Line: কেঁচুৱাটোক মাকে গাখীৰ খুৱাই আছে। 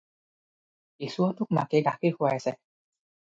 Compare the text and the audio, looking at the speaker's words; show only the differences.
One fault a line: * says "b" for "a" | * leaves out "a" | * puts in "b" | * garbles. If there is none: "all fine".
all fine